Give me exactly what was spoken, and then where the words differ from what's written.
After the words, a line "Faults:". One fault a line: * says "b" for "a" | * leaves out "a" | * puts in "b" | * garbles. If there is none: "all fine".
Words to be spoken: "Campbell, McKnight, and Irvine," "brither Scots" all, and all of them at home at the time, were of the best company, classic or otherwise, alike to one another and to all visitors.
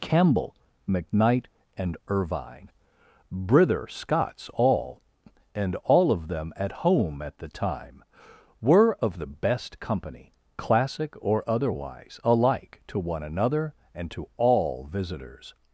"Campbell, McKnight, and Irvine," "brither Scots" all, and all of them at home at the time, were of the best company, classic or otherwise, alike to one another and to all visitors.
Faults:
all fine